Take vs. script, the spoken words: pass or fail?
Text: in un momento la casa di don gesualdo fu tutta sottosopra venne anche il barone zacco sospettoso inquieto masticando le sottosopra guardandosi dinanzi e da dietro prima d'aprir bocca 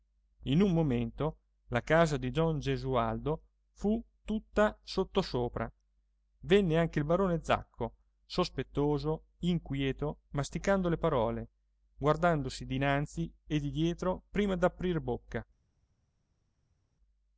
fail